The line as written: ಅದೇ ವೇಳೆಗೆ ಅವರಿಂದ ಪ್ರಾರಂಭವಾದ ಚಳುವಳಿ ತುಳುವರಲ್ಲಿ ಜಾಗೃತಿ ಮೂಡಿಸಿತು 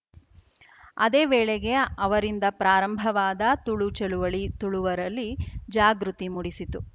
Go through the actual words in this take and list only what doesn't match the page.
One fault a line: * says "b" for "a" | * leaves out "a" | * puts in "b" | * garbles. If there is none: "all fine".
* puts in "ತುಳು"